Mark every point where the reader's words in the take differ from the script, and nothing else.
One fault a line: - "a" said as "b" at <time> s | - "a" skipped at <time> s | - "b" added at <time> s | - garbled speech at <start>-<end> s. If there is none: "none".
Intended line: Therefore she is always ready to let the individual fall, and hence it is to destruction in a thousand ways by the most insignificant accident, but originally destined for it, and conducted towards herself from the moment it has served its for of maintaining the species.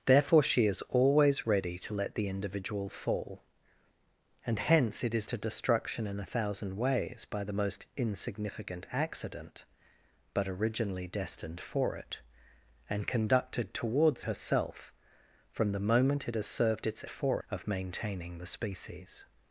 none